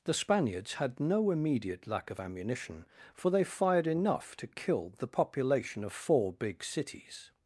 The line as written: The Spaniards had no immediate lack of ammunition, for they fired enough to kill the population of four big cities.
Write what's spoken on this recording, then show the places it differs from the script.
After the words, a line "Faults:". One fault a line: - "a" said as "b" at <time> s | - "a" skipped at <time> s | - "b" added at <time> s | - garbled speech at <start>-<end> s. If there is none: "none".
The Spaniards had no immediate lack of ammunition, for they fired enough to kill the population of four big cities.
Faults:
none